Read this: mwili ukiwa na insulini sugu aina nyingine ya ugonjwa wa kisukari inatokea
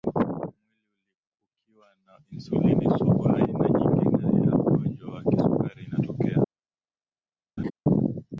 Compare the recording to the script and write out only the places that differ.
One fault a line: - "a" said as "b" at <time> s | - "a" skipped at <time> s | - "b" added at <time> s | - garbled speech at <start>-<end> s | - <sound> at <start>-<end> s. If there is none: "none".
- laugh at 7.6-7.7 s